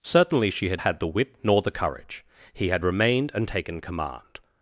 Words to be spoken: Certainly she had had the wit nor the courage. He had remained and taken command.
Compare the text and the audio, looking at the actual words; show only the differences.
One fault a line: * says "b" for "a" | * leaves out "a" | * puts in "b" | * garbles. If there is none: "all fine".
all fine